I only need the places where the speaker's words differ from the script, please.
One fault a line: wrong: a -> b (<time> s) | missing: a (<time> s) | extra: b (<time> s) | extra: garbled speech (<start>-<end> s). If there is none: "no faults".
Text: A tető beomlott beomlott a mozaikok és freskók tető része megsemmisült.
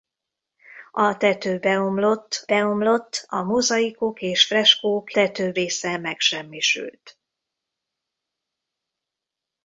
no faults